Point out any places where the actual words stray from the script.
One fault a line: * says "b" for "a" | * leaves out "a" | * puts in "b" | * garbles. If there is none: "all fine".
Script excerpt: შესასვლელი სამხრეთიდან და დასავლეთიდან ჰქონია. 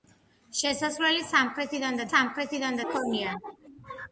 * says "სამხრეთიდან" for "დასავლეთიდან"